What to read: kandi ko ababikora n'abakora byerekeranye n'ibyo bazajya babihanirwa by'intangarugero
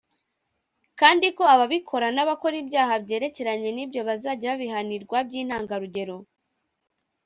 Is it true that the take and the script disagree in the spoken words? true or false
true